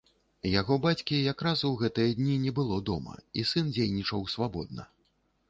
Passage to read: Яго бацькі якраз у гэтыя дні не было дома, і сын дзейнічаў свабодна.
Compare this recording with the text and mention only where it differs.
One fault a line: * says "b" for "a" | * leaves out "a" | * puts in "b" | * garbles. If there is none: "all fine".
all fine